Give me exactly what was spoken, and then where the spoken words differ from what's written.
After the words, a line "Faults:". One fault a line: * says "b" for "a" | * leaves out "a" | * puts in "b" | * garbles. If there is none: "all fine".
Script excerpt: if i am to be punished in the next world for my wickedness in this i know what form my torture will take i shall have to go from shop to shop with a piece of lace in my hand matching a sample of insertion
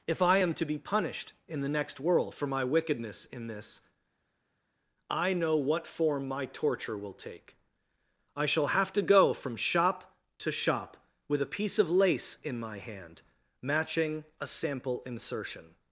if i am to be punished in the next world for my wickedness in this i know what form my torture will take i shall have to go from shop to shop with a piece of lace in my hand matching a sample insertion
Faults:
* leaves out "of"